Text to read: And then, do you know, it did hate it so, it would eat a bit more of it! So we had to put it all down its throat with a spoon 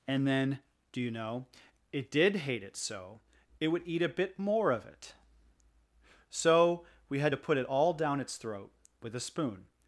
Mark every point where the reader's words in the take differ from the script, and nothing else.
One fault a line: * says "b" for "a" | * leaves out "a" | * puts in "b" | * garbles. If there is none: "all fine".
all fine